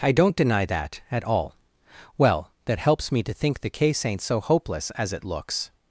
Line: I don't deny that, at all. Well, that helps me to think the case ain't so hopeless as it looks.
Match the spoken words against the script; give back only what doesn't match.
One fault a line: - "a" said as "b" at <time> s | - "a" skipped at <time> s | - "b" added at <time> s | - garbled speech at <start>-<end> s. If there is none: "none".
none